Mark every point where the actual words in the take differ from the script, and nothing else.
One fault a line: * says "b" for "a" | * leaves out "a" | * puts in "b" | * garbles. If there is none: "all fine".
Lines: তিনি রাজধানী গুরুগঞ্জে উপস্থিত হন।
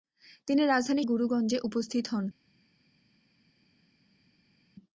all fine